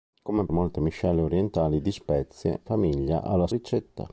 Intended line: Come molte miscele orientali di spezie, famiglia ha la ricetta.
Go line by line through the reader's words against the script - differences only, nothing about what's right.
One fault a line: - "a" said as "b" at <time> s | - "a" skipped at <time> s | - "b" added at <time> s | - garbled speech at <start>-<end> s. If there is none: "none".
none